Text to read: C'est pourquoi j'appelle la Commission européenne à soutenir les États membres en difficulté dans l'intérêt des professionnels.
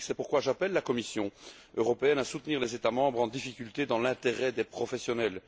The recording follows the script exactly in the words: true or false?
true